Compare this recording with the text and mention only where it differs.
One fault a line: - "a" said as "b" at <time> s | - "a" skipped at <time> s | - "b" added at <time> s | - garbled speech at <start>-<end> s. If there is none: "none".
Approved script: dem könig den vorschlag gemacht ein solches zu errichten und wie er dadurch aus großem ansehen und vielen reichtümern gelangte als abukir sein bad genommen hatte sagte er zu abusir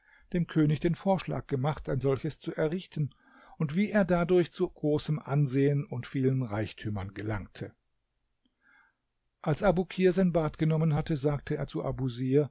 - "aus" said as "zu" at 4.5 s